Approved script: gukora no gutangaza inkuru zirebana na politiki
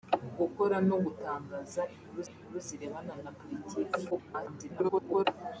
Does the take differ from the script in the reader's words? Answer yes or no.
yes